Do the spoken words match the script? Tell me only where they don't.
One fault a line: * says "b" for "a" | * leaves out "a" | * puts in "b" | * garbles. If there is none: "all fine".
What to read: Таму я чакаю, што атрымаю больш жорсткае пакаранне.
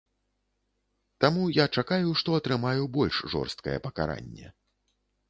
all fine